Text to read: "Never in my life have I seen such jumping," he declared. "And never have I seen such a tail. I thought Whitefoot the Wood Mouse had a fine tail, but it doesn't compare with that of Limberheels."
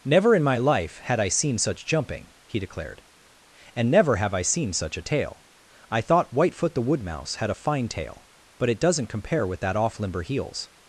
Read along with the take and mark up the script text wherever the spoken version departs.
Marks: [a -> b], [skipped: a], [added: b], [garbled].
"Never in my life [have -> had] I seen such jumping," he declared. "And never have I seen such a tail. I thought Whitefoot the Wood Mouse had a fine tail, but it doesn't compare with that [of -> off] Limberheels."